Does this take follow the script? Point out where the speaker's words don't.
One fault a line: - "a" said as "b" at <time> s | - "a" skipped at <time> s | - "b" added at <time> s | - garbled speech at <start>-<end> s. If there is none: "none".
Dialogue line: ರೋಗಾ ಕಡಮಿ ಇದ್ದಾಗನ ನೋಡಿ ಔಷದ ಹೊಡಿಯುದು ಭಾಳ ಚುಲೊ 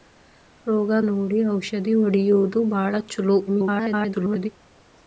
- "ಕಡಮಿ ಇದ್ದಾಗನ" skipped at 1.0 s
- garbled speech at 3.5-4.5 s